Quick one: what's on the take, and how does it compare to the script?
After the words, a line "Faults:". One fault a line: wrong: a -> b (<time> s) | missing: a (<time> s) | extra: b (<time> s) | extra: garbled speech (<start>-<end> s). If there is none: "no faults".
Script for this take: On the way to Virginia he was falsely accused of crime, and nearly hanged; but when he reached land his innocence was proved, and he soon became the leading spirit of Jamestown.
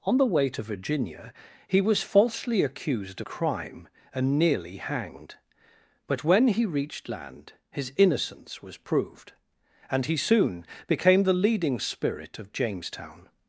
On the way to Virginia he was falsely accused crime, and nearly hanged; but when he reached land his innocence was proved, and he soon became the leading spirit of Jamestown.
Faults:
missing: of (3.2 s)